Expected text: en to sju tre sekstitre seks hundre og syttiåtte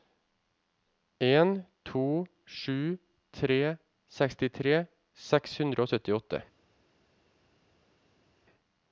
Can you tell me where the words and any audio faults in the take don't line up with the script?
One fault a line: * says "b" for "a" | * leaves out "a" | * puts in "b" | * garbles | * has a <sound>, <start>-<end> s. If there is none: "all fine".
all fine